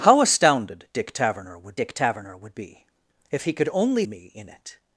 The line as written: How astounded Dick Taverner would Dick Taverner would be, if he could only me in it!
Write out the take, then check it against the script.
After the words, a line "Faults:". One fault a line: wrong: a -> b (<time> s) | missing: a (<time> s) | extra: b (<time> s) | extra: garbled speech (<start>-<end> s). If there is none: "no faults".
How astounded Dick Taverner would Dick Taverner would be, if he could only me in it!
Faults:
no faults